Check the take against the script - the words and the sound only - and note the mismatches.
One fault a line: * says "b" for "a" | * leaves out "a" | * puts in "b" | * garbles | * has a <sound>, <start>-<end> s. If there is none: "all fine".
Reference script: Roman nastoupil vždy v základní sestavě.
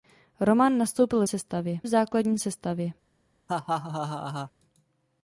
* says "sestavě" for "vždy"
* has a laugh, 3.5-4.5 s